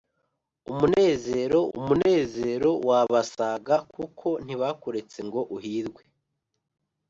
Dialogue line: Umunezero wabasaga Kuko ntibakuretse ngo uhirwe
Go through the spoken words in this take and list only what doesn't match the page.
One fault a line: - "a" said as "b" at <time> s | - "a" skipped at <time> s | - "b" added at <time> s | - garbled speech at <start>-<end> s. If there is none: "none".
- "umunezero" added at 1.8 s